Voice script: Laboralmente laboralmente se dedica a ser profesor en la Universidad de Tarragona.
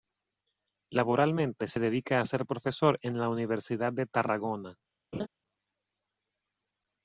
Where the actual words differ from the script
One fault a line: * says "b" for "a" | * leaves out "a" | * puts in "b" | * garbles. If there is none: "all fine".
* leaves out "laboralmente"